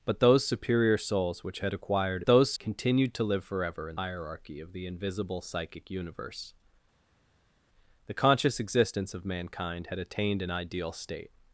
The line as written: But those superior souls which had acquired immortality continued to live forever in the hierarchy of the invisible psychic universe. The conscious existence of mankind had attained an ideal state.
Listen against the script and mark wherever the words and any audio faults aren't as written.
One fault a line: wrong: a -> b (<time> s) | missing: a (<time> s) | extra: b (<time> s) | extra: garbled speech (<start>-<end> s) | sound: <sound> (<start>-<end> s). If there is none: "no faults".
wrong: immortality -> those (2.3 s)
missing: the (4.0 s)